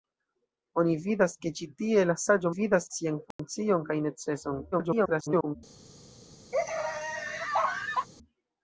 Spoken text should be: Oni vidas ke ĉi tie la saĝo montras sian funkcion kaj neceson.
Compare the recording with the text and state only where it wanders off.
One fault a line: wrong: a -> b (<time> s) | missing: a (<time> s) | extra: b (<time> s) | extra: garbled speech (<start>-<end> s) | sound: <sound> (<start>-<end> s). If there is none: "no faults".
wrong: montras -> vidas (2.5 s)
sound: dropout (3.3-3.4 s)
extra: garbled speech (4.7-5.6 s)
sound: laugh (6.5-8.1 s)